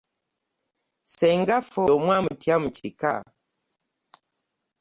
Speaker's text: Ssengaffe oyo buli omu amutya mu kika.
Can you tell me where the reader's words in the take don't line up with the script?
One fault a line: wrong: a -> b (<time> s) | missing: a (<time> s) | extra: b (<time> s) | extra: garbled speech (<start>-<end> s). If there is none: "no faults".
missing: oyo buli (1.8 s)